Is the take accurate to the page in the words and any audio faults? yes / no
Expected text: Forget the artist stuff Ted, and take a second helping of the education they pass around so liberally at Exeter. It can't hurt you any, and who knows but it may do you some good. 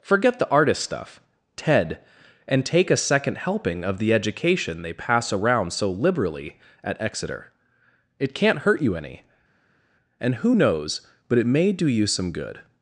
yes